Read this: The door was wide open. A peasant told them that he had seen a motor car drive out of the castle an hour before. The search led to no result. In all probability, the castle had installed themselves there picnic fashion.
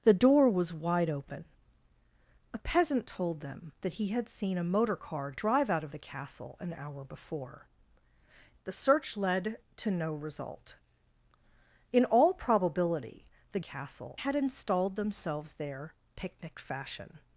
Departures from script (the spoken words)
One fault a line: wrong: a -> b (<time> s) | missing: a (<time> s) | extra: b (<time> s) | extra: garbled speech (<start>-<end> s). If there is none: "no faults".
no faults